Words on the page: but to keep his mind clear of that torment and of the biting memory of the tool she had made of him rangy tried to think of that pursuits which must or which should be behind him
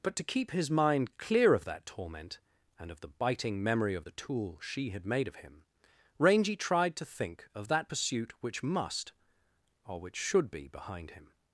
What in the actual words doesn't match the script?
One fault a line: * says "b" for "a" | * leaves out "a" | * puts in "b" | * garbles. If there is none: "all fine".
* says "pursuit" for "pursuits"